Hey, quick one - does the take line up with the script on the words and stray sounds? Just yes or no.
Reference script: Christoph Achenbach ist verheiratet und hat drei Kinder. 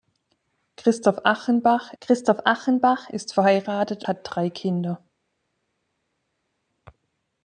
no